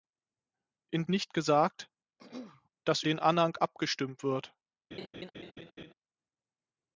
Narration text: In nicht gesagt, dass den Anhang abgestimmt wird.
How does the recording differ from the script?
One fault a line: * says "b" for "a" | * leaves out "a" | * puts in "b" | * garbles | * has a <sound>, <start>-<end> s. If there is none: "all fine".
* has a throat clearing, 2.2-2.7 s
* has a laugh, 4.9-5.9 s